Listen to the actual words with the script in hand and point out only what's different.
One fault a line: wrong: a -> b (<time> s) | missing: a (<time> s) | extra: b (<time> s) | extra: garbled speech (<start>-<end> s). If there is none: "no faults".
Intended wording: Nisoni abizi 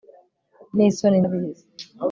no faults